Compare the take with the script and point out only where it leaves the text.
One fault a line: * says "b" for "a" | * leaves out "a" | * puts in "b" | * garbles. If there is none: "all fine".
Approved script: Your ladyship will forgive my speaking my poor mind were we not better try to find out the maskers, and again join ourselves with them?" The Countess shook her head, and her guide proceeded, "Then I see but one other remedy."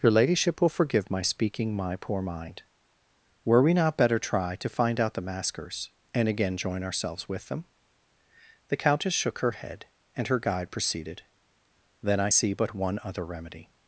all fine